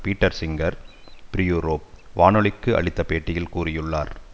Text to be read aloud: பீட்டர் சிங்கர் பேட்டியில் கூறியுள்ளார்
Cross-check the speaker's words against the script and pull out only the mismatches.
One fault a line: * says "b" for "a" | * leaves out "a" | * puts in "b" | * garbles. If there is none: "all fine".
* puts in "பிரியூரோப் வானொலிக்கு அளித்த"